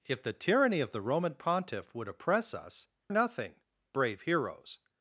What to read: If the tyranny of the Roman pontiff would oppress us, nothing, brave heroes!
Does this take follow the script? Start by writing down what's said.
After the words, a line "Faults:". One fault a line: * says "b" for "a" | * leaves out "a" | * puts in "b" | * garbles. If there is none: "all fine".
If the tyranny of the Roman pontiff would oppress us, nothing, brave heroes!
Faults:
all fine